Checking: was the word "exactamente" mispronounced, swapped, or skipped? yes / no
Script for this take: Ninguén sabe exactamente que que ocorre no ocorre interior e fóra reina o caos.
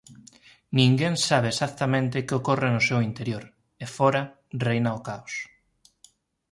no